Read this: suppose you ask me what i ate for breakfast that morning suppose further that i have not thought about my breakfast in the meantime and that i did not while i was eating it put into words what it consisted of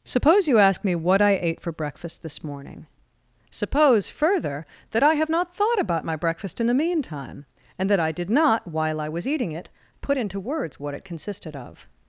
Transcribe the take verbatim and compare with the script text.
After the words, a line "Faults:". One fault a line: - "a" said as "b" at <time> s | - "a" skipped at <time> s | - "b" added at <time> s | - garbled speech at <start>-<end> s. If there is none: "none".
suppose you ask me what i ate for breakfast this morning suppose further that i have not thought about my breakfast in the meantime and that i did not while i was eating it put into words what it consisted of
Faults:
- "that" said as "this" at 2.2 s